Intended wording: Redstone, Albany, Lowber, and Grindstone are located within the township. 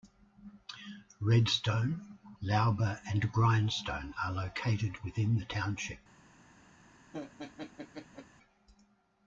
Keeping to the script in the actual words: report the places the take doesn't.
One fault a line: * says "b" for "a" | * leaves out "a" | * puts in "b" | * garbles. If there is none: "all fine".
* leaves out "Albany"